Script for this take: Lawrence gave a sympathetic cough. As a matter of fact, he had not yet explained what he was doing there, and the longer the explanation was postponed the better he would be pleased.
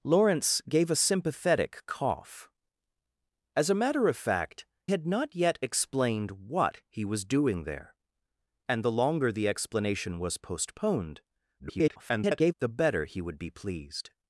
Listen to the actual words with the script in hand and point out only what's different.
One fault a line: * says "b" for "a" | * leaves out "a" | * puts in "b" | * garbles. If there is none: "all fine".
* leaves out "he"
* garbles